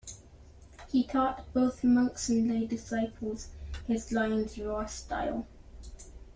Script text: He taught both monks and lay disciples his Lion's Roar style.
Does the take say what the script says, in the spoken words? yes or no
yes